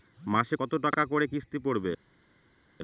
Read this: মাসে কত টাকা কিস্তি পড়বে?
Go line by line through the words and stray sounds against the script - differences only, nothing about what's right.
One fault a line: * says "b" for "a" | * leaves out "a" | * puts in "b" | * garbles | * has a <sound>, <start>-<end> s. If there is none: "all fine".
* puts in "করে"